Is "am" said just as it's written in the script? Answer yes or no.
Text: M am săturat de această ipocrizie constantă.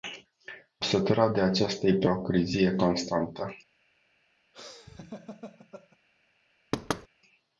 no